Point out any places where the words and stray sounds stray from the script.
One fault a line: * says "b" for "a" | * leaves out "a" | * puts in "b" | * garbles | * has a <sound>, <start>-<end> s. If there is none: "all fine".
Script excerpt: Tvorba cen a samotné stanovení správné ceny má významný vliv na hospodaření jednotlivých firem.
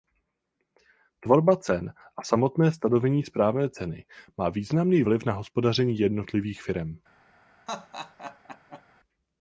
* has a laugh, 7.7-8.8 s